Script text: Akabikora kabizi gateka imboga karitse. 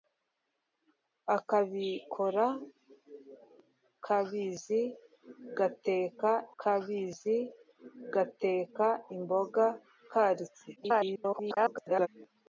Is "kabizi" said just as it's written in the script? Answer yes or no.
yes